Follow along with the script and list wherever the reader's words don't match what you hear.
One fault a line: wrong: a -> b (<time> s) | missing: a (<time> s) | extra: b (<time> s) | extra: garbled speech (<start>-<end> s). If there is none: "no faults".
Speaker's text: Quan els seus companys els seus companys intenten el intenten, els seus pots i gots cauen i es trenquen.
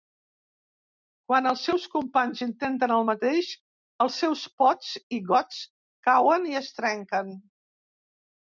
missing: els seus companys (2.4 s)
wrong: intenten -> mateix (3.1 s)